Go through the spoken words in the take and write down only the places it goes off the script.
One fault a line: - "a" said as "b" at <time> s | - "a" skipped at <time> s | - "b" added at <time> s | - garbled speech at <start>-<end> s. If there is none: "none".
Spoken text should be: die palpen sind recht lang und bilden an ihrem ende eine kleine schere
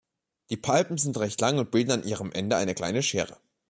none